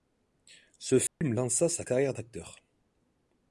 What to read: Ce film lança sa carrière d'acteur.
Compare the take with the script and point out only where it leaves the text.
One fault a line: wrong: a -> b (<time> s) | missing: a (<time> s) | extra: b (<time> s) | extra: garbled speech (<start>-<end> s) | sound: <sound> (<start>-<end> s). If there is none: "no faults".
sound: dropout (1.1-1.2 s)